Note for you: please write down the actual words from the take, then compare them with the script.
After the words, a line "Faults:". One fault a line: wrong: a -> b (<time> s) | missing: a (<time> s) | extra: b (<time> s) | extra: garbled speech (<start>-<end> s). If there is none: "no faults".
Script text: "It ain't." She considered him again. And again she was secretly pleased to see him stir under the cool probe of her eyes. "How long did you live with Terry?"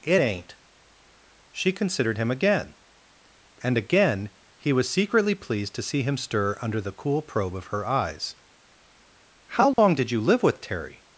"It ain't." She considered him again. And again he was secretly pleased to see him stir under the cool probe of her eyes. "How long did you live with Terry?"
Faults:
wrong: she -> he (4.6 s)